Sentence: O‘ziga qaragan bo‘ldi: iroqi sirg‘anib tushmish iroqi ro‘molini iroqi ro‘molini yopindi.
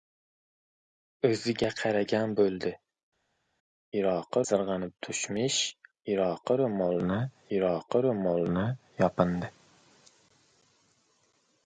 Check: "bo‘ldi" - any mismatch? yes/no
no